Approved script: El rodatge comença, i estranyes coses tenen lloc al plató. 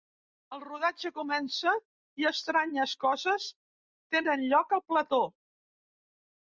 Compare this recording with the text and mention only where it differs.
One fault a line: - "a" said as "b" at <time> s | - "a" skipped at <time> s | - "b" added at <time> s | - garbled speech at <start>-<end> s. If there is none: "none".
none